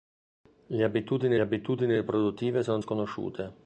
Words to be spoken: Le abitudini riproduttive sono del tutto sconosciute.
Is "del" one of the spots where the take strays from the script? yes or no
yes